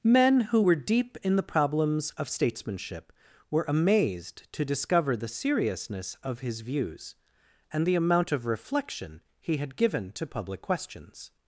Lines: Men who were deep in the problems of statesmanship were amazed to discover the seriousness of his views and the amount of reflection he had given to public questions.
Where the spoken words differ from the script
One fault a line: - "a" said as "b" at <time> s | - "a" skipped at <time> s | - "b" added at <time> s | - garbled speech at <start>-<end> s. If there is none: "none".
none